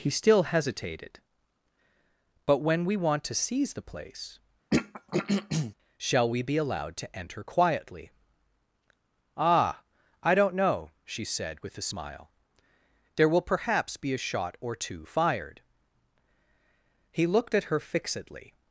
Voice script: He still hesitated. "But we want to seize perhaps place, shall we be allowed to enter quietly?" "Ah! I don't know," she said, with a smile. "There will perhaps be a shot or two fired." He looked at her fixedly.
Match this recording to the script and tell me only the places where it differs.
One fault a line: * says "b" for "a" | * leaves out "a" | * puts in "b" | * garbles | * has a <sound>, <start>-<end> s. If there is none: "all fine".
* puts in "when"
* says "the" for "perhaps"
* has a throat clearing, 4.7-5.7 s